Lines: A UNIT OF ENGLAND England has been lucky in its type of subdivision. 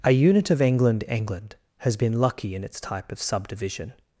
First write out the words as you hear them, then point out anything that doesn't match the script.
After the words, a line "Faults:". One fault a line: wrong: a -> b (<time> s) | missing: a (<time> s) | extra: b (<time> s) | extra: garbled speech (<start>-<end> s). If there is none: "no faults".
A UNIT OF ENGLAND England has been lucky in its type of subdivision.
Faults:
no faults